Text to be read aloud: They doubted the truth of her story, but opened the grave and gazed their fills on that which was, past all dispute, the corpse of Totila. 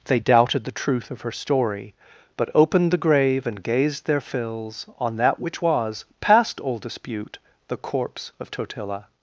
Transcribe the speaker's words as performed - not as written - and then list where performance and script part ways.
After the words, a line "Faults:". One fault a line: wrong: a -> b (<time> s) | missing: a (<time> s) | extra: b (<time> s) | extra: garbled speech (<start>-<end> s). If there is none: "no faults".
They doubted the truth of her story, but opened the grave and gazed their fills on that which was, past all dispute, the corpse of Totila.
Faults:
no faults